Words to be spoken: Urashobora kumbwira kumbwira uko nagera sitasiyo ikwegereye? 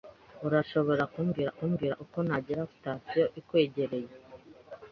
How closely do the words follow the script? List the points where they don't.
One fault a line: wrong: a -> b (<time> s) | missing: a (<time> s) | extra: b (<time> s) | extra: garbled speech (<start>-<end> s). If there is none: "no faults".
no faults